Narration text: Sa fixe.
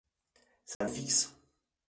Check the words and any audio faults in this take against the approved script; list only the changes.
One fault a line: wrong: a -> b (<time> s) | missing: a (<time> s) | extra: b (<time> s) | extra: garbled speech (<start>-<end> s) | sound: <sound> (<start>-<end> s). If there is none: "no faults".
sound: dropout (0.7-0.8 s)